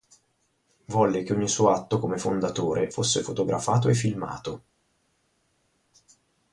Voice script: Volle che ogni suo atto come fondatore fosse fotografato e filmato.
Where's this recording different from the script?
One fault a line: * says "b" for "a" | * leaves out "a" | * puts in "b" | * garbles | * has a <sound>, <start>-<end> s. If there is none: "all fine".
all fine